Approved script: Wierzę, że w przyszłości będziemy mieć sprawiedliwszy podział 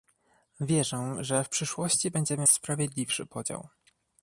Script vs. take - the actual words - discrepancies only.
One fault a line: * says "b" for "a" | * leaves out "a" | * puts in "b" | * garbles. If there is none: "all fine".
* leaves out "mieć"